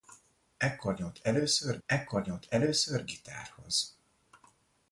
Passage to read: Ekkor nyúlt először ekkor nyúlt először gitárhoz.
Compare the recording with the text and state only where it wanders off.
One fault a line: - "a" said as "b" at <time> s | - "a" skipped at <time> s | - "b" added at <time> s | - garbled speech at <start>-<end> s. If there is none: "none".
none